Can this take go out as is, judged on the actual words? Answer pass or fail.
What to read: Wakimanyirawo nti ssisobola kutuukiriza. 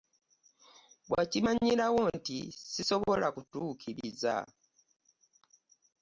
pass